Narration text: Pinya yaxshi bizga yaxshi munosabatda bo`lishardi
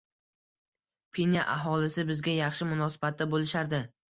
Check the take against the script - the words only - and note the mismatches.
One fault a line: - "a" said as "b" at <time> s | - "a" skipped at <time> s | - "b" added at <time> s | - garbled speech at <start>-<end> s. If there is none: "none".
- "yaxshi" said as "aholisi" at 1.6 s